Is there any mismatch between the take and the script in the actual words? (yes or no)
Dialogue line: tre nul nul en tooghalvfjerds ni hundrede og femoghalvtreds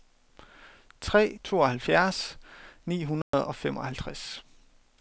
yes